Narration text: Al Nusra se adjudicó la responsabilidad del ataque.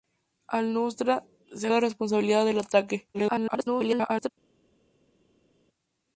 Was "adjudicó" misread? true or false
true